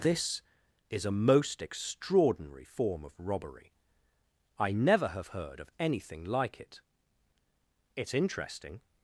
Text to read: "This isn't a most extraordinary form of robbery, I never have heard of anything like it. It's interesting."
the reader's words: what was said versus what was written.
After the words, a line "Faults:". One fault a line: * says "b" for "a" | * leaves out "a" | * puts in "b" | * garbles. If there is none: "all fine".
"This is a most extraordinary form of robbery, I never have heard of anything like it. It's interesting."
Faults:
* says "is" for "isn't"